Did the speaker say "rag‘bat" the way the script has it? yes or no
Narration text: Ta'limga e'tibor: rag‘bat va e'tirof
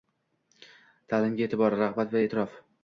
yes